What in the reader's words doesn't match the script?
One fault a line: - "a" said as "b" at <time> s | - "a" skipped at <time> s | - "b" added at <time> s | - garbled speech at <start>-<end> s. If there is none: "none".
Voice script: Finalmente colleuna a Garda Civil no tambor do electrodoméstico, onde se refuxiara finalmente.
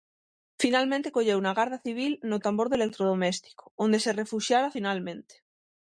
none